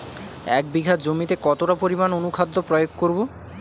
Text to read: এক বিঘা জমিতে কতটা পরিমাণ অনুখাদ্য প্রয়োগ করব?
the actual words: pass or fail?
pass